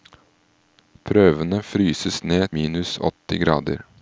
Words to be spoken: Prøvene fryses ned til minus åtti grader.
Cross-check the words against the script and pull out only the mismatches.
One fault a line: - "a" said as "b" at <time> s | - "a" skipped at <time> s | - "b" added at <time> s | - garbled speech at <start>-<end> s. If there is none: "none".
- "til" skipped at 2.5 s